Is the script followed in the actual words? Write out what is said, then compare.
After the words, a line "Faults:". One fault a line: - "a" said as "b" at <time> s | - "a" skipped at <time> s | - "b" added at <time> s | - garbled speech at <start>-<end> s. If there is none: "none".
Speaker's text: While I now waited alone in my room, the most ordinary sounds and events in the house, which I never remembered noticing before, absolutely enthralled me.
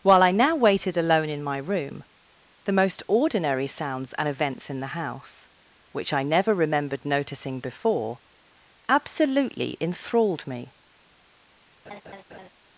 While I now waited alone in my room, the most ordinary sounds and events in the house, which I never remembered noticing before, absolutely enthralled me.
Faults:
none